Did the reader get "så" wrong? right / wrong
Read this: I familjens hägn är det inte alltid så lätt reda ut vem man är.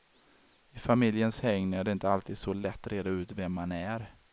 right